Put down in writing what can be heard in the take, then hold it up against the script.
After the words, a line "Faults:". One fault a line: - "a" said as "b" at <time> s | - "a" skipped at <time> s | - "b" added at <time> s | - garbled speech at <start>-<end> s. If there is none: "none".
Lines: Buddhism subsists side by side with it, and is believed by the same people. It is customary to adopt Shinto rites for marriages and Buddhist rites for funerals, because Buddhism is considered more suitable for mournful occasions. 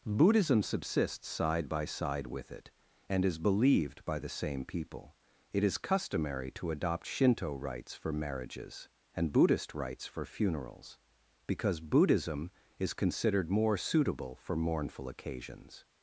Buddhism subsists side by side with it, and is believed by the same people. It is customary to adopt Shinto rites for marriages and Buddhist rites for funerals, because Buddhism is considered more suitable for mournful occasions.
Faults:
none